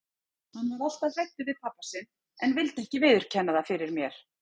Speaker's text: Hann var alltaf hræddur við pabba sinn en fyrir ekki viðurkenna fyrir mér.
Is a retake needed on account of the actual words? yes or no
yes